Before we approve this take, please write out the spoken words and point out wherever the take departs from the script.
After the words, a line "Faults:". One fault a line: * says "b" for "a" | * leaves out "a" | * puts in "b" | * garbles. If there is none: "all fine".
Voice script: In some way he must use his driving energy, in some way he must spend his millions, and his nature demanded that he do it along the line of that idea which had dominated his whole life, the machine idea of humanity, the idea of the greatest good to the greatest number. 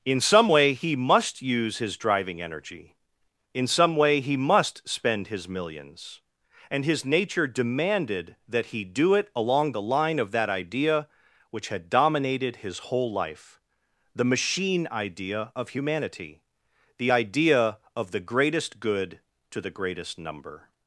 In some way he must use his driving energy, in some way he must spend his millions, and his nature demanded that he do it along the line of that idea which had dominated his whole life, the machine idea of humanity, the idea of the greatest good to the greatest number.
Faults:
all fine